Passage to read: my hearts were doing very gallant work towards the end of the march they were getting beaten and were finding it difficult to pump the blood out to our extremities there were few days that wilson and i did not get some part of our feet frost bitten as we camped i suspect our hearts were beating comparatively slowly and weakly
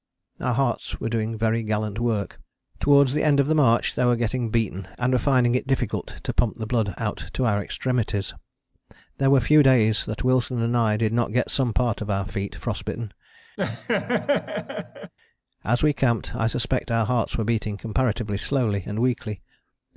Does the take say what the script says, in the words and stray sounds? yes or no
no